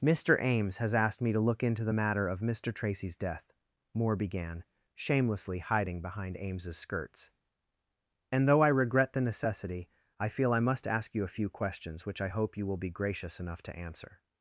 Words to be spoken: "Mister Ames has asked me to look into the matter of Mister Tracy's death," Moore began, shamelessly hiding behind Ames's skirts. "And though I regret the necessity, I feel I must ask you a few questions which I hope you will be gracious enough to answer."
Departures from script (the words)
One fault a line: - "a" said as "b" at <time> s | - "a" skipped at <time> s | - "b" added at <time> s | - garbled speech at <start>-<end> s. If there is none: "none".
none